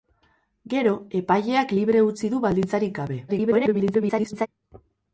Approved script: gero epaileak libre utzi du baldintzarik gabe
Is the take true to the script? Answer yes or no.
no